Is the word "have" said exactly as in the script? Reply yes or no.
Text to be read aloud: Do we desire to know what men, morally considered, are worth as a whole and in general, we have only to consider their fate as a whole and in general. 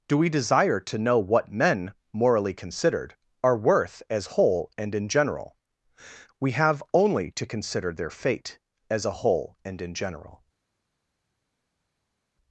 yes